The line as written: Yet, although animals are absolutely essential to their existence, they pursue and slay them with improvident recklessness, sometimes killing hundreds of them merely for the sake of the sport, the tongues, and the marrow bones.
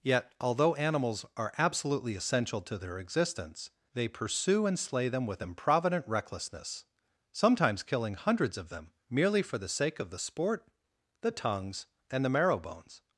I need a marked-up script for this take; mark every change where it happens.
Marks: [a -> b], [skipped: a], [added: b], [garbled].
Yet, although animals are absolutely essential to their existence, they pursue and slay them with improvident recklessness, sometimes killing hundreds of them merely for the sake of the sport, the tongues, and the marrow bones.